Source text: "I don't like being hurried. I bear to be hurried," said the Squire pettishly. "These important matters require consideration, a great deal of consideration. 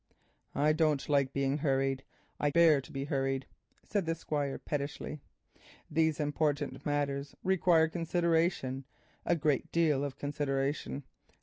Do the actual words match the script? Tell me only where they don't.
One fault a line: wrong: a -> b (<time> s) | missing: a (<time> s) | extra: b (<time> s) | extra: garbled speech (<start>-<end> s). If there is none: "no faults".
no faults